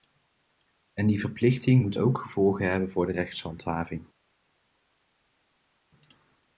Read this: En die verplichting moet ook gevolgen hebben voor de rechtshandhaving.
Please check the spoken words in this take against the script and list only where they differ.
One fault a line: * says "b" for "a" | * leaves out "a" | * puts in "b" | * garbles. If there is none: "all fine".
all fine